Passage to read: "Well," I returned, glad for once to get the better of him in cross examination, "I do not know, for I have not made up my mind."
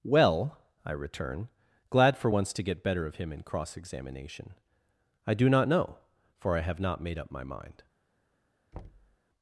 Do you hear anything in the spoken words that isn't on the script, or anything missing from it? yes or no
yes